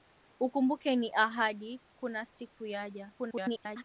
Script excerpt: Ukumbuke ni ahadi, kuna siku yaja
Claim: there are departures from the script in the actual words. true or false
true